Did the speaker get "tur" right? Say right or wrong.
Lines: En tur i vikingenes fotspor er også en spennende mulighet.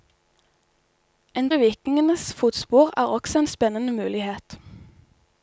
wrong